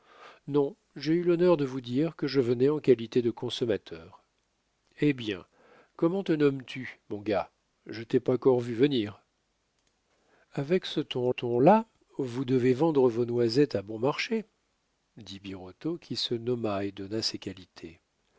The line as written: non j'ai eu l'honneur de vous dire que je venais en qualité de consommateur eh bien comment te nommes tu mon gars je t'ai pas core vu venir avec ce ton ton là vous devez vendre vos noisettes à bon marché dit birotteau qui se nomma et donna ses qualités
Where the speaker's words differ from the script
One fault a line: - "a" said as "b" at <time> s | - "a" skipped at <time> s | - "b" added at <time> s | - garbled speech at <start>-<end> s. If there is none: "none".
none